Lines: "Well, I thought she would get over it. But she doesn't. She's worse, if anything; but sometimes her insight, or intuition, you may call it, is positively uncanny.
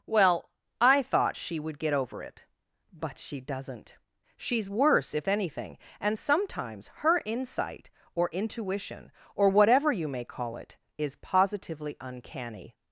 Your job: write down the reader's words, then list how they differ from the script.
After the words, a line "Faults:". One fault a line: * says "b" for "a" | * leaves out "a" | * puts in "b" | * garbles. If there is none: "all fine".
"Well, I thought she would get over it. But she doesn't. She's worse, if anything; and sometimes her insight, or intuition, or whatever you may call it, is positively uncanny.
Faults:
* says "and" for "but"
* puts in "or whatever"